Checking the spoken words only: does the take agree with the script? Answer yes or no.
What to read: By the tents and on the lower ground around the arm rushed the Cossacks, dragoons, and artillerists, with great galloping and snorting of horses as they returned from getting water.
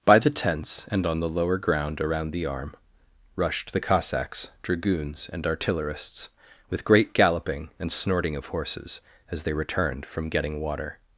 yes